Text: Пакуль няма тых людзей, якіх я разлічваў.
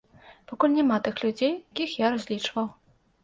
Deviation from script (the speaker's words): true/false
false